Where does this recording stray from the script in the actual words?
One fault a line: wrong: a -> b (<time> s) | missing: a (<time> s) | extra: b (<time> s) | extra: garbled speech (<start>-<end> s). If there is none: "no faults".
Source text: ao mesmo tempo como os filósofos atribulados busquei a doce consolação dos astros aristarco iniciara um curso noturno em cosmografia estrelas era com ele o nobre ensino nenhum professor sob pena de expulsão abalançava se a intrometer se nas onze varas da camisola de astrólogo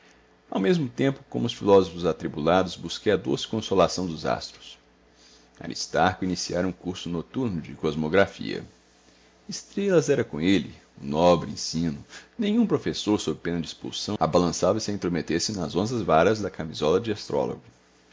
wrong: em -> de (7.6 s)